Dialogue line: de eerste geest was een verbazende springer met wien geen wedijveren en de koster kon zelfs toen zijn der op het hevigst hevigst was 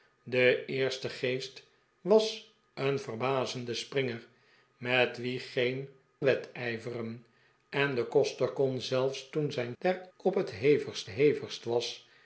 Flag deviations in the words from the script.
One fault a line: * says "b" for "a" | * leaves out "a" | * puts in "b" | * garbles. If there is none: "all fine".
all fine